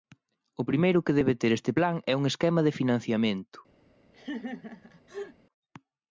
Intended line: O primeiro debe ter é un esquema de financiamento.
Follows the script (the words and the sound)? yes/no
no